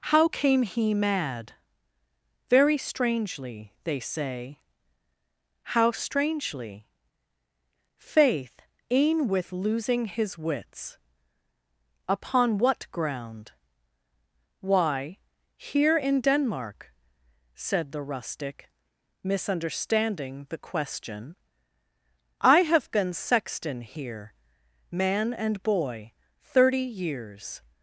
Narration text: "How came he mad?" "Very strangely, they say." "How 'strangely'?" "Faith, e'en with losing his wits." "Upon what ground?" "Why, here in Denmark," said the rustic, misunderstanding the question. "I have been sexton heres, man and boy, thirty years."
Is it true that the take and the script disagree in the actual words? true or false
true